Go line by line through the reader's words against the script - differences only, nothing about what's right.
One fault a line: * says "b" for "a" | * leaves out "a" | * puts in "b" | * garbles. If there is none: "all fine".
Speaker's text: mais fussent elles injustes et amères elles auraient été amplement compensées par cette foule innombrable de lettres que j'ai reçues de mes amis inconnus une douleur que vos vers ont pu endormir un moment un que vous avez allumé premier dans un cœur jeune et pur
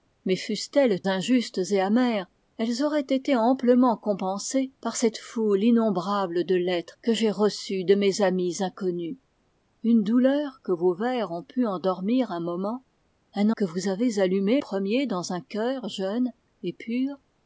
all fine